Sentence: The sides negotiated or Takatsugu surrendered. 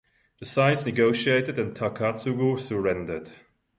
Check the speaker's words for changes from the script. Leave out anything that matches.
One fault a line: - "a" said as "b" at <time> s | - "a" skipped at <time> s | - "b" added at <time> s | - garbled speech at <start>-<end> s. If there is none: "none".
- "or" said as "and" at 1.6 s